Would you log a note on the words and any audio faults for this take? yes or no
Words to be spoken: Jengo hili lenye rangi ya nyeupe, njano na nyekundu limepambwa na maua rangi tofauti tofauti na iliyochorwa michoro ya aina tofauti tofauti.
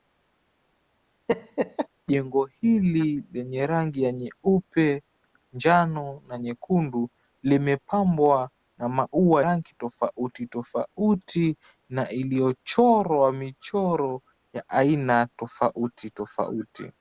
yes